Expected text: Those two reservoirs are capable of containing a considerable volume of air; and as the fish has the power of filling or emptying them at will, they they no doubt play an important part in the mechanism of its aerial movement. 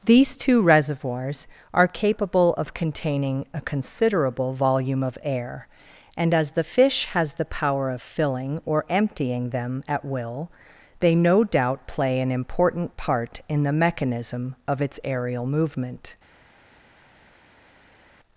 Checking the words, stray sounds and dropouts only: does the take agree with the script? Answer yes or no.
no